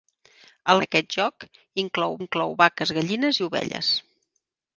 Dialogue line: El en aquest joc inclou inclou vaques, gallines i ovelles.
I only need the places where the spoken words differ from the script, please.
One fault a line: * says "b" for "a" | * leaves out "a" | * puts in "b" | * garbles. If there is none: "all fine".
all fine